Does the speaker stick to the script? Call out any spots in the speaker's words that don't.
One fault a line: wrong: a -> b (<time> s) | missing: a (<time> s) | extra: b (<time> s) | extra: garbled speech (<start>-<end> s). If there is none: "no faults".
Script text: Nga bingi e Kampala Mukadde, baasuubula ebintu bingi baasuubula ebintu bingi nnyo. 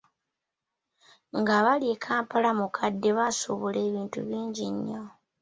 wrong: bingi -> bali (1.6 s)
missing: baasuubula ebintu bingi (4.7 s)